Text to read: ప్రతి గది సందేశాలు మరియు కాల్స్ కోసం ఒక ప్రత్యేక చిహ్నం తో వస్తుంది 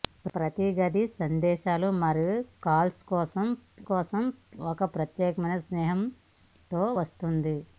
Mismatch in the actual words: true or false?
true